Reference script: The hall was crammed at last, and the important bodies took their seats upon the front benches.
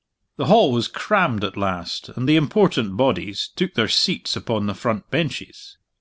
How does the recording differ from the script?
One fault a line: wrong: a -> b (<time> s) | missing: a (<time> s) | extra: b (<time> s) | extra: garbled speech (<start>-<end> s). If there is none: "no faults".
no faults